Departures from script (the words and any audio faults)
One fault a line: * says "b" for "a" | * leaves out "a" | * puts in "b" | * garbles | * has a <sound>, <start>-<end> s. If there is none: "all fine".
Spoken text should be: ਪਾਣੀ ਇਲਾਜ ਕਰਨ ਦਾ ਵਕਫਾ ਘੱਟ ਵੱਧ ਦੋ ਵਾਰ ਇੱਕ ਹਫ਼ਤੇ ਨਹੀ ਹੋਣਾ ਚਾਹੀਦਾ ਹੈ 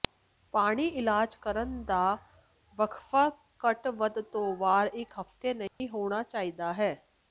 * has a dropout, 5.7-5.8 s